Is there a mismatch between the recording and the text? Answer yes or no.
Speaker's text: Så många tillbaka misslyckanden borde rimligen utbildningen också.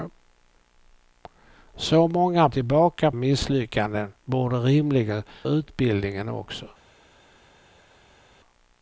no